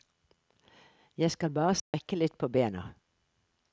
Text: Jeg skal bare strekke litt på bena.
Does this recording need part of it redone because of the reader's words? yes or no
no